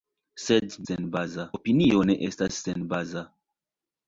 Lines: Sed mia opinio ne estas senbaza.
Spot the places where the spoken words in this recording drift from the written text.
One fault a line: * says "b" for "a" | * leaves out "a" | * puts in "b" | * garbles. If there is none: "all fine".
* says "senbaza" for "mia"